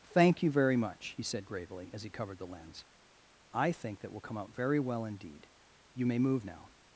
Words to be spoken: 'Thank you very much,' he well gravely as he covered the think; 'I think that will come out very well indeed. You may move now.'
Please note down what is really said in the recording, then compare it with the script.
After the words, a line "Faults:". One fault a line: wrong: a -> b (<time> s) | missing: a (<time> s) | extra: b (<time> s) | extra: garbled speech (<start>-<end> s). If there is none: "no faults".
'Thank you very much,' he said gravely as he covered the lens; 'I think that will come out very well indeed. You may move now.'
Faults:
wrong: well -> said (1.2 s)
wrong: think -> lens (2.5 s)